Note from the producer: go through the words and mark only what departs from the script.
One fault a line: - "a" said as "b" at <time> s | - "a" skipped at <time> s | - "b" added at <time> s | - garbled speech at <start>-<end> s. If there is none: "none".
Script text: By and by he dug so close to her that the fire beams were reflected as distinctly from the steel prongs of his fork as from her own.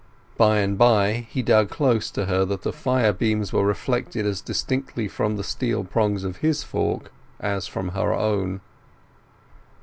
- "so" skipped at 1.7 s